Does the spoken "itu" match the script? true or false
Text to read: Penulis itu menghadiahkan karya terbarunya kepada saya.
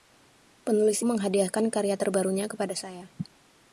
false